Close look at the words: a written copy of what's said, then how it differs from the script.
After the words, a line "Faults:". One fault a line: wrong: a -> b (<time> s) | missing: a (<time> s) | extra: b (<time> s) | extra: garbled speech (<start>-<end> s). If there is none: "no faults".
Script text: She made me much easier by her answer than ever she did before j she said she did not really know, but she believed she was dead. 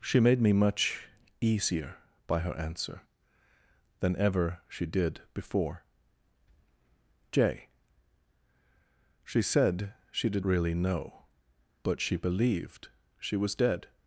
She made me much easier by her answer than ever she did before j she said she did really know, but she believed she was dead.
Faults:
missing: not (10.4 s)